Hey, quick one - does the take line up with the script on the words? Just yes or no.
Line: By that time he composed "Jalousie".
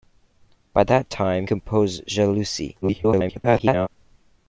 no